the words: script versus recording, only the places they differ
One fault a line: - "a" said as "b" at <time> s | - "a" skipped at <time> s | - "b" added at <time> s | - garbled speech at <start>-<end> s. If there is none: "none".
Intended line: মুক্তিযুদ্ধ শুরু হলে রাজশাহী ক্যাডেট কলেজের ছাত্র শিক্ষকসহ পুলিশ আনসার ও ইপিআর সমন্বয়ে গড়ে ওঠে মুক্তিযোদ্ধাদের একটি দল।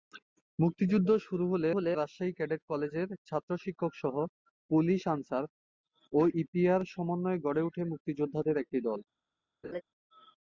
- "হলে" added at 1.7 s